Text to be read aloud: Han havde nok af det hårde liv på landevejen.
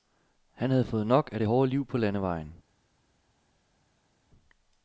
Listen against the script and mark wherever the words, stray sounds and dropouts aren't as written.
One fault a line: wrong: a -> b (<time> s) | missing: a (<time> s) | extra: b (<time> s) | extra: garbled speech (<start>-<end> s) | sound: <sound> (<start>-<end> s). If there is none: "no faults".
extra: fået (0.8 s)